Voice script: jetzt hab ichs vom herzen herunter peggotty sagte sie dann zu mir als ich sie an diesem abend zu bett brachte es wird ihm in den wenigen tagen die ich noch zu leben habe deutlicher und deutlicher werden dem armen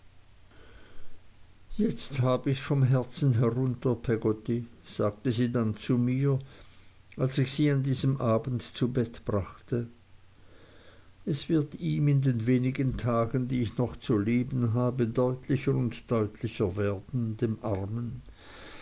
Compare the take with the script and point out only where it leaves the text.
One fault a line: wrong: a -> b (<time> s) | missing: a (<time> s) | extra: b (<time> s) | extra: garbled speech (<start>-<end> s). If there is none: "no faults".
no faults